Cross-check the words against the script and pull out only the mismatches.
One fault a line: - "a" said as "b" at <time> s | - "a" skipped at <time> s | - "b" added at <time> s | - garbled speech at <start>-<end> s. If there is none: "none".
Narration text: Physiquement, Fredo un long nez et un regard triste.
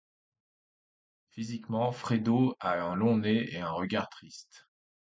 - "a" added at 2.6 s